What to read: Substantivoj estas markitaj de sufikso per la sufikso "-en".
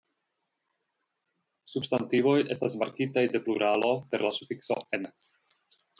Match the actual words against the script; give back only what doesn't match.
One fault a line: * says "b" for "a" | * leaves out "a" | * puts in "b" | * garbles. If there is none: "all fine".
* says "pluralo" for "sufikso"